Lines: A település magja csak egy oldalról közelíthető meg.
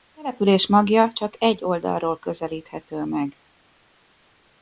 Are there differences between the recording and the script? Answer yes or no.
no